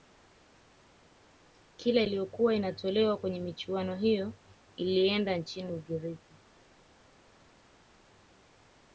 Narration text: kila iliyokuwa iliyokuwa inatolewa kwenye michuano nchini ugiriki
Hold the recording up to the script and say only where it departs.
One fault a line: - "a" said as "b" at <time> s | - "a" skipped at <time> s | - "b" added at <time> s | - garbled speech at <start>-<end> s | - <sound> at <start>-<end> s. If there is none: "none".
- "iliyokuwa" skipped at 2.5 s
- "hiyo ilienda" added at 4.0 s